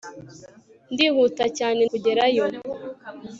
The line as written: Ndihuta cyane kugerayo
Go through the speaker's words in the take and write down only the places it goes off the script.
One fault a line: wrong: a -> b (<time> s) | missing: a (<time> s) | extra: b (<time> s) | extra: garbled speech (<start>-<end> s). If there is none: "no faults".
no faults